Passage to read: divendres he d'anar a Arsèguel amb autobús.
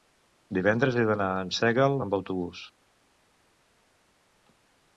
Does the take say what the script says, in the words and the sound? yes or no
yes